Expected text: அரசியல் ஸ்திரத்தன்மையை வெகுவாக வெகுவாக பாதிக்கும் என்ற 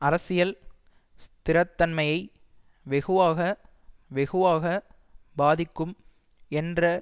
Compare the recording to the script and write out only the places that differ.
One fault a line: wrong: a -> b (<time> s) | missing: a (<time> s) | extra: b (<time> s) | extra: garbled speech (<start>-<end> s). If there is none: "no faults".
no faults